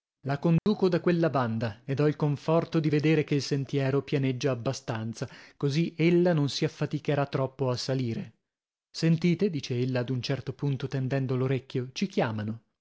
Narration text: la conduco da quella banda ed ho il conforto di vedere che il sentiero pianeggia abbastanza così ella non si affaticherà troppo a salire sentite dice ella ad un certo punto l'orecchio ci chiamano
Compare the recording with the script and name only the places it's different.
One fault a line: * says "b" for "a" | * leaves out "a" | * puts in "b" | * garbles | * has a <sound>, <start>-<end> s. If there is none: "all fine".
* has a dropout, 0.6-0.7 s
* puts in "tendendo"